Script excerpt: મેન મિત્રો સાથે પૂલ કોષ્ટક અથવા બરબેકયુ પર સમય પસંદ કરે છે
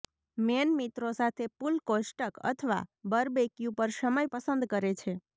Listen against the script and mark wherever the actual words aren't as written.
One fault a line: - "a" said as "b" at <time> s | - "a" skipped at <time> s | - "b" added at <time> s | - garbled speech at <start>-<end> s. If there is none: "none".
none